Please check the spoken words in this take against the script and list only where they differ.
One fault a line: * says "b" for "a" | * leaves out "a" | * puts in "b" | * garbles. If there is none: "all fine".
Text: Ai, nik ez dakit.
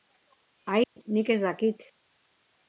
all fine